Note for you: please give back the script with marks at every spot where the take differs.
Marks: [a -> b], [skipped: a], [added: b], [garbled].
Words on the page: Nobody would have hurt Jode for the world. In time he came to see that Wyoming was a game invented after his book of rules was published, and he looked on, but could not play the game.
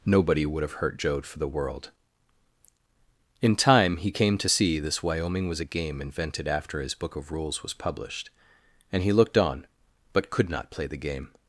Nobody would have hurt Jode for the world. In time he came to see [that -> this] Wyoming was a game invented after his book of rules was published, and he looked on, but could not play the game.